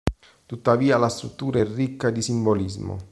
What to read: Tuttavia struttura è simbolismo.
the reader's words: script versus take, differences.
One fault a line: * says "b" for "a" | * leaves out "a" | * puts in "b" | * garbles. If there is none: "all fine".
* puts in "la"
* puts in "ricca di"